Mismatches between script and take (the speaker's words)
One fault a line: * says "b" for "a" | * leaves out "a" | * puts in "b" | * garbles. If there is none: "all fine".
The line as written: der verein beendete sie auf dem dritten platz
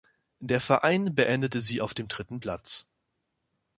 all fine